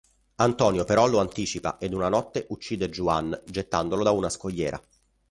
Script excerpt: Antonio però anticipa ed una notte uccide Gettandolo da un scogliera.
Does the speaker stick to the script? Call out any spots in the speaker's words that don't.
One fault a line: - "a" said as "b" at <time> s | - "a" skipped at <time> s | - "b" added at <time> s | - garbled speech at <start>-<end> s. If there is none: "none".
- "lo" added at 1.1 s
- "Juan" added at 2.9 s
- "un" said as "una" at 4.1 s